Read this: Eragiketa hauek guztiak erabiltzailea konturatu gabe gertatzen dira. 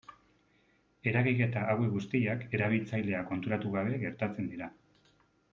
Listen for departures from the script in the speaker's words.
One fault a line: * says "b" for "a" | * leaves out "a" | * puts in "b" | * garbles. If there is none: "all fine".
all fine